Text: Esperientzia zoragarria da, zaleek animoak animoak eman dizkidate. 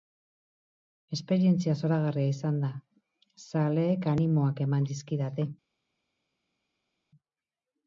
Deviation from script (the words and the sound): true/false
true